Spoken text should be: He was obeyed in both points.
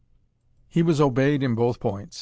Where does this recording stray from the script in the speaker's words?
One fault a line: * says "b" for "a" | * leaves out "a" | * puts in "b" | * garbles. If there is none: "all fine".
all fine